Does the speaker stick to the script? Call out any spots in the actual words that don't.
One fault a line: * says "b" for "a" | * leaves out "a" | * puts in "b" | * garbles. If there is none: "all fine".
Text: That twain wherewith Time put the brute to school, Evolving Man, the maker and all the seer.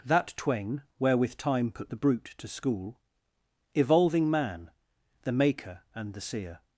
* leaves out "all"